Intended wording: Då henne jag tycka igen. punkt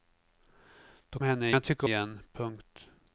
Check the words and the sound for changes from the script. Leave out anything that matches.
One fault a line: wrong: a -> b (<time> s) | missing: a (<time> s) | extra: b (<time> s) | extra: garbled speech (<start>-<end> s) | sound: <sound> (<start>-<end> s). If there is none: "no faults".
no faults